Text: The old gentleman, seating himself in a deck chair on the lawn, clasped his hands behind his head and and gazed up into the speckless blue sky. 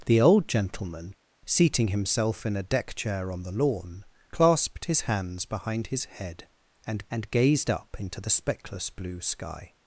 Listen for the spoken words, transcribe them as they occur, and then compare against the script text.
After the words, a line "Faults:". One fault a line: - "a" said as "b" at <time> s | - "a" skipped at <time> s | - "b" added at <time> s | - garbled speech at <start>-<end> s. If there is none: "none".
The old gentleman, seating himself in a deck chair on the lawn, clasped his hands behind his head and and gazed up into the speckless blue sky.
Faults:
none